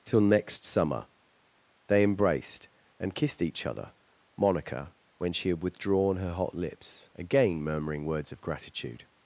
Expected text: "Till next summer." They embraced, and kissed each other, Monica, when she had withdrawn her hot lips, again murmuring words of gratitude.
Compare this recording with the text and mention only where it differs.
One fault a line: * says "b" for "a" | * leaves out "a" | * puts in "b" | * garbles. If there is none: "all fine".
all fine